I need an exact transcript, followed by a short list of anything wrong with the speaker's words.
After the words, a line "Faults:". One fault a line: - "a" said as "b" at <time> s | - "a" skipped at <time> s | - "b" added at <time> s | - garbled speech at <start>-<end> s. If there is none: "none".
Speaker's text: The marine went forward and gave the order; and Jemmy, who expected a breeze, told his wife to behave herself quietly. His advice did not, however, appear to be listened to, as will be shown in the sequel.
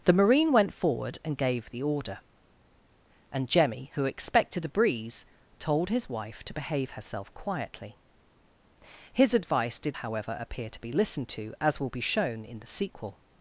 The marine went forward and gave the order; and Jemmy, who expected a breeze, told his wife to behave herself quietly. His advice did however, appear to be listened to, as will be shown in the sequel.
Faults:
- "not" skipped at 10.0 s